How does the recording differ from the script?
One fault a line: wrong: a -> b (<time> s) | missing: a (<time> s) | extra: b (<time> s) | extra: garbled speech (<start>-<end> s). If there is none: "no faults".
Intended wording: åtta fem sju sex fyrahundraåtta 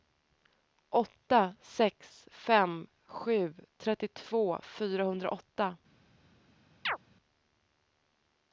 extra: sex (1.6 s)
wrong: sex -> trettiotvå (3.8 s)